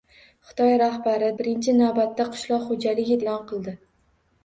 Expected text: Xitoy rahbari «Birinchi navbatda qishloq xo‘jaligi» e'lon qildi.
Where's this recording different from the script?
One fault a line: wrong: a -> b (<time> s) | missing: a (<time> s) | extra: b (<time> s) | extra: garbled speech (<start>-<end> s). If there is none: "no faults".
no faults